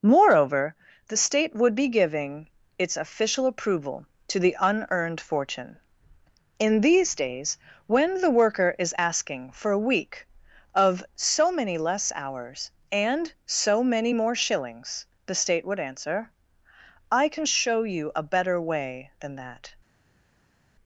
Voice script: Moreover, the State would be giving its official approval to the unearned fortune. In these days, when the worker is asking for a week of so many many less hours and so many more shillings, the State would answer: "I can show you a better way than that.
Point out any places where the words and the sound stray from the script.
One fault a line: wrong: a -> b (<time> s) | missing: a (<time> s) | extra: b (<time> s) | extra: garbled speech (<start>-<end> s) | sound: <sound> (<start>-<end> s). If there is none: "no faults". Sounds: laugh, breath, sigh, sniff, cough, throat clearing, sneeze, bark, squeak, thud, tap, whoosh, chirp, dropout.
missing: many (11.8 s)